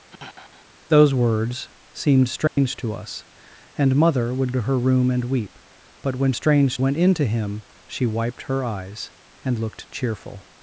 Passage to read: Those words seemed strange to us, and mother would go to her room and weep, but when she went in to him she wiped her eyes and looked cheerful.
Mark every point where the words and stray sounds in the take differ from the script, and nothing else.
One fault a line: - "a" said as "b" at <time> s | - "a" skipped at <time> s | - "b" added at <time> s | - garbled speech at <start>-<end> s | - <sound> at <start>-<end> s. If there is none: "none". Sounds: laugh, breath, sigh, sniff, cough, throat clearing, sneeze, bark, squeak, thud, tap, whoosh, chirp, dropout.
- sigh at 0.1-0.7 s
- dropout at 2.5-2.6 s
- "go" skipped at 4.5 s
- "she" said as "strange" at 6.3 s